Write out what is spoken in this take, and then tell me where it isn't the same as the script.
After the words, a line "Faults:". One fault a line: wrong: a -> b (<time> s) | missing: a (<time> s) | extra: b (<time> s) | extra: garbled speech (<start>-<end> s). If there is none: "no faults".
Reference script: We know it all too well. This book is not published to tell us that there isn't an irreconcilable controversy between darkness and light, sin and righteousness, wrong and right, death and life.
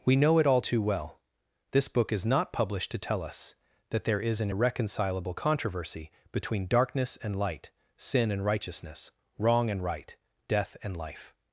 We know it all too well. This book is not published to tell us that there is an irreconcilable controversy between darkness and light, sin and righteousness, wrong and right, death and life.
Faults:
wrong: isn't -> is (4.2 s)